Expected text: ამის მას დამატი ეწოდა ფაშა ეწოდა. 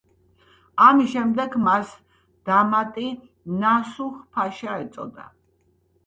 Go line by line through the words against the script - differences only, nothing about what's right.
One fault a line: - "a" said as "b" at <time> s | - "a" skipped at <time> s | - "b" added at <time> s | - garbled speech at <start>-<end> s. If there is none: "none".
- "შემდეგ" added at 1.1 s
- "ეწოდა" said as "ნასუჰ" at 3.6 s